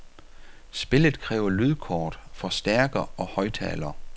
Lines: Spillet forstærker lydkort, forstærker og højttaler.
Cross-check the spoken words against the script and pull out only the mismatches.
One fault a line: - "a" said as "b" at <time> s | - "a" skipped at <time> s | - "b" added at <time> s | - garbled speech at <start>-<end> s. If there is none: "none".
- "forstærker" said as "kræver" at 1.2 s